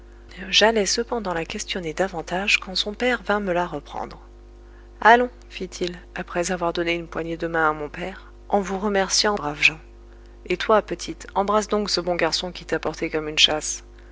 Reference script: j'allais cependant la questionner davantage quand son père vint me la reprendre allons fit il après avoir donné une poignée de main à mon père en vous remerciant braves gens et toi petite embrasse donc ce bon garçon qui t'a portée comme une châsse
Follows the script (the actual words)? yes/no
yes